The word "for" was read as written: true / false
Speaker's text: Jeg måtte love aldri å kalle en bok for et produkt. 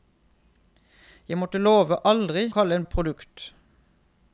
false